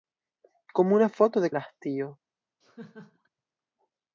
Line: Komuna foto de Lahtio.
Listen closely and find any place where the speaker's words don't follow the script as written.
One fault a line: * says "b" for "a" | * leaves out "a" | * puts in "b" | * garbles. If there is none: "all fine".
all fine